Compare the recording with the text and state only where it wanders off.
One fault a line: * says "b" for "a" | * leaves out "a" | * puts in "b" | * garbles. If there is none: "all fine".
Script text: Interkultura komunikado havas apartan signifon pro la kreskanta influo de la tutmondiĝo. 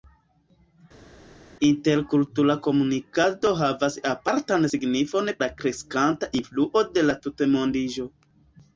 * leaves out "pro"